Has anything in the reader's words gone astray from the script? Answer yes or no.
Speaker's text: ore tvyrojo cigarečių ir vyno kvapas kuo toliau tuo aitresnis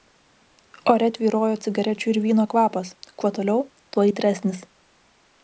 no